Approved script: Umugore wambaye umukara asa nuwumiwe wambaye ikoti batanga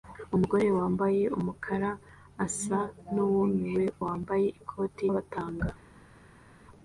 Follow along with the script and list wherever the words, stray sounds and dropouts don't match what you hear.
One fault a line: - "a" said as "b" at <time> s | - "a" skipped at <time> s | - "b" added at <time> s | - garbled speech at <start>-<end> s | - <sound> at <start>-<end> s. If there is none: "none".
none